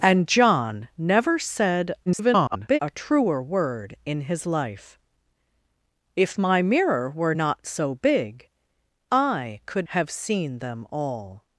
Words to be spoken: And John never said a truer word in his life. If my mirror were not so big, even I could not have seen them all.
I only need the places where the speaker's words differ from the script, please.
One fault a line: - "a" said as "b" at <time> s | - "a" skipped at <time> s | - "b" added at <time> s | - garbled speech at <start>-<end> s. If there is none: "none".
- garbled speech at 2.1-2.8 s
- "even" skipped at 8.5 s
- "not" skipped at 9.9 s